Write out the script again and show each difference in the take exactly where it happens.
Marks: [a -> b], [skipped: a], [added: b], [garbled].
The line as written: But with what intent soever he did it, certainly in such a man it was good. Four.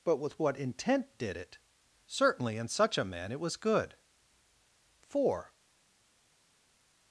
But with what intent [skipped: soever he] did it, certainly in such a man it was good. Four.